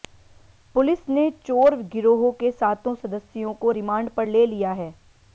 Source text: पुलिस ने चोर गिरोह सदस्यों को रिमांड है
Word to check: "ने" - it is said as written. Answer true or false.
true